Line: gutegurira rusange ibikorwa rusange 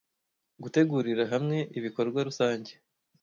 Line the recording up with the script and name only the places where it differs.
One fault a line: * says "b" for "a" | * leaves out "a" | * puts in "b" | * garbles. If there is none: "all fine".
* says "hamwe" for "rusange"